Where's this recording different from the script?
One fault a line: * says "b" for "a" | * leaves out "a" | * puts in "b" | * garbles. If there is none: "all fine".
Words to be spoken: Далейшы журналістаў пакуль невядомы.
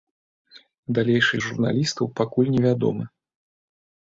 all fine